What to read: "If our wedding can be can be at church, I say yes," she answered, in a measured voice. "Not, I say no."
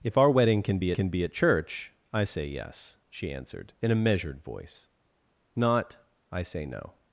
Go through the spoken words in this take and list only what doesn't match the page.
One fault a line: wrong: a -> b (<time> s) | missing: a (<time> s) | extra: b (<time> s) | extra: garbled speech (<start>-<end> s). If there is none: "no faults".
no faults